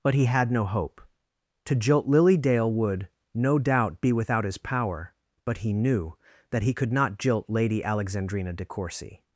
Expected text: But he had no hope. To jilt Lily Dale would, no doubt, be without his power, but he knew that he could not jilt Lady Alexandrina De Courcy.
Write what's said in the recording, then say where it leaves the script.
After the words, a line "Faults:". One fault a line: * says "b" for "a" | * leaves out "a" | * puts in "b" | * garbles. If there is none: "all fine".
But he had no hope. To jilt Lily Dale would, no doubt, be without his power, but he knew that he could not jilt Lady Alexandrina De Courcy.
Faults:
all fine